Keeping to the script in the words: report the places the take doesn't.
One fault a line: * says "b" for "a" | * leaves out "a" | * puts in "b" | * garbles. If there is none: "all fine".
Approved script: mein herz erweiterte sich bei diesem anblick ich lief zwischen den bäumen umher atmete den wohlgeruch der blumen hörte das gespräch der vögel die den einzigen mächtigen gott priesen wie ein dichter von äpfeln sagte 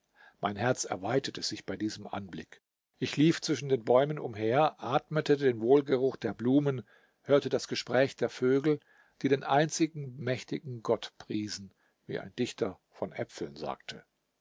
all fine